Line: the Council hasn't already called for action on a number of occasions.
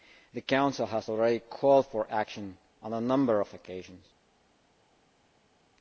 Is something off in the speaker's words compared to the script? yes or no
yes